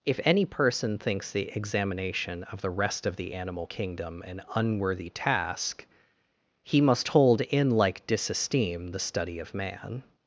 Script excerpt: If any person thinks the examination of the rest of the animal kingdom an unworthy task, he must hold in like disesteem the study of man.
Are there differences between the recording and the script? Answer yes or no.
no